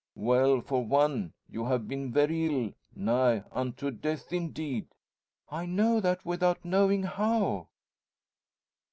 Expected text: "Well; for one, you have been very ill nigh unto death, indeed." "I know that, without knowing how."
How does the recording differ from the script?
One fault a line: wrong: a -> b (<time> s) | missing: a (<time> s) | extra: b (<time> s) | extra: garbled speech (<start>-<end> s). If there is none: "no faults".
no faults